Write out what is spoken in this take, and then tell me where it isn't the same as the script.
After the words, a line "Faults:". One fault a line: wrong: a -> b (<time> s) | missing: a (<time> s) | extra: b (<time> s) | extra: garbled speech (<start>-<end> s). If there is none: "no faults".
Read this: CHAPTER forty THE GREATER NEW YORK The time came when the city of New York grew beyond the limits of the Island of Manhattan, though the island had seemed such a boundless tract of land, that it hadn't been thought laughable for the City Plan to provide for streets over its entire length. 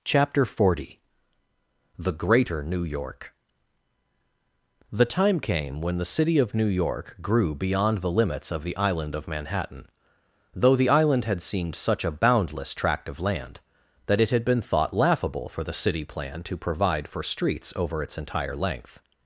CHAPTER forty THE GREATER NEW YORK The time came when the city of New York grew beyond the limits of the Island of Manhattan, though the island had seemed such a boundless tract of land, that it had been thought laughable for the City Plan to provide for streets over its entire length.
Faults:
wrong: hadn't -> had (14.3 s)